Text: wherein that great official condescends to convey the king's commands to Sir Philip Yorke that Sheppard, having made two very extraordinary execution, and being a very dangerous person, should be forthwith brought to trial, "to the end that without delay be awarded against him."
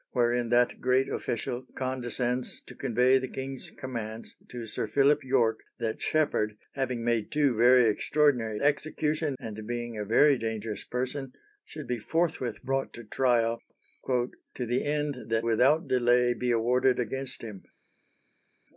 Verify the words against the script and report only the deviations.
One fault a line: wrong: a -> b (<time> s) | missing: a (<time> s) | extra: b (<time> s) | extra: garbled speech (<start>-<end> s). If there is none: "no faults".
no faults